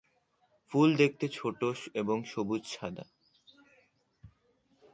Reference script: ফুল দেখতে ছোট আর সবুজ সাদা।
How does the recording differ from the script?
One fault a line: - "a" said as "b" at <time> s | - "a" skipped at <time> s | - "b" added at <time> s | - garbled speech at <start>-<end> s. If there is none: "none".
- "আর" said as "এবং" at 1.9 s